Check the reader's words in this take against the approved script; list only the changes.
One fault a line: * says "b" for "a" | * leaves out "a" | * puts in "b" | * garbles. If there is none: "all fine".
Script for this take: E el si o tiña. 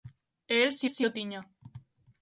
* puts in "si"